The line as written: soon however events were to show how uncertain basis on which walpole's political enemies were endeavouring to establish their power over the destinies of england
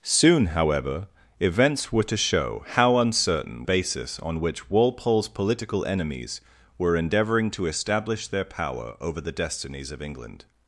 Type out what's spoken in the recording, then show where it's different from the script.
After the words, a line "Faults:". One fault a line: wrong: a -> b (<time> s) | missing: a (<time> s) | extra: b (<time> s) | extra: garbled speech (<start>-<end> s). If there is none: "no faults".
soon however events were to show how uncertain basis on which walpole's political enemies were endeavouring to establish their power over the destinies of england
Faults:
no faults